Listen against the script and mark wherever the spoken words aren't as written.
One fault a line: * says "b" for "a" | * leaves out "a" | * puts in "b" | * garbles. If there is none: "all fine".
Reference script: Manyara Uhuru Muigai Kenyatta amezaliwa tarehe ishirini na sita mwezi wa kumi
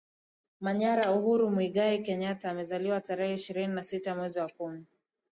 all fine